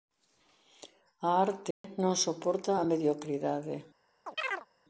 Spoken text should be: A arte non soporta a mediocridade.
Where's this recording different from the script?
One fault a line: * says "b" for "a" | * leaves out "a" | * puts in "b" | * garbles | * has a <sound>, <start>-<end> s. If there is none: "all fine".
* has a dropout, 1.7-1.8 s
* has a chirp, 4.3-4.7 s